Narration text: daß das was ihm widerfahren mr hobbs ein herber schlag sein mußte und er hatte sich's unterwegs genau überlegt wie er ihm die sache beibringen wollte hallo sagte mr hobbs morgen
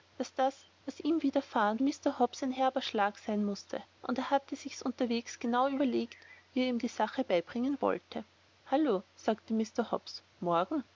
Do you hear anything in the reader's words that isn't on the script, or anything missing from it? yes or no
no